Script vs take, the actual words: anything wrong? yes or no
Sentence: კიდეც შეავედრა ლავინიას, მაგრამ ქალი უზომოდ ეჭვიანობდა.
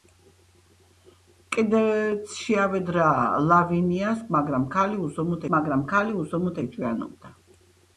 yes